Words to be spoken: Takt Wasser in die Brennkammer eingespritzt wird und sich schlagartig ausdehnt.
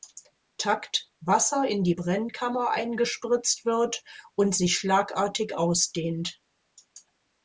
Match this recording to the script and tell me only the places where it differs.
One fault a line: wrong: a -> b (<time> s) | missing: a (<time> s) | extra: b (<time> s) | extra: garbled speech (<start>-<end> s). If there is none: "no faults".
no faults